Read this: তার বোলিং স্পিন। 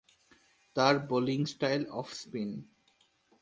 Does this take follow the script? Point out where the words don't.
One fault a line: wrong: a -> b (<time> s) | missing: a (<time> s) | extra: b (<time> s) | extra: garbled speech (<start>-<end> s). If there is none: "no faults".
extra: স্টাইল অফ (1.4 s)